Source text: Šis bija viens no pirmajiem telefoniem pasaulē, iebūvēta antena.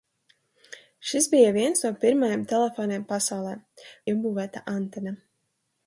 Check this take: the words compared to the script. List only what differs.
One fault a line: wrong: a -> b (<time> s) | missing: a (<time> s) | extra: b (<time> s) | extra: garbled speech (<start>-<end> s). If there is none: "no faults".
no faults